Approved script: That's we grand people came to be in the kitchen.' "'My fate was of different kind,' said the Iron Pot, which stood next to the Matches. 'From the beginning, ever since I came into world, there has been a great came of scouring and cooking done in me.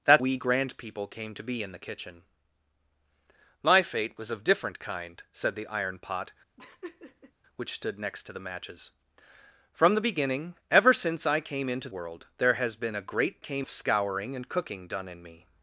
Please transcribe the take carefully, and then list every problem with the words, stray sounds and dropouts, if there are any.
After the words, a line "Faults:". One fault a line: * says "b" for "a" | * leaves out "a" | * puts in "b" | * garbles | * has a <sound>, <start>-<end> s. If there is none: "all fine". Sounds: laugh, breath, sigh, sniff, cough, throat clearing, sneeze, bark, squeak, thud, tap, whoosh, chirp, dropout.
That's we grand people came to be in the kitchen.' "'My fate was of different kind,' said the Iron Pot, which stood next to the Matches. 'From the beginning, ever since I came into world, there has been a great came of scouring and cooking done in me.
Faults:
* has a laugh, 6.6-7.3 s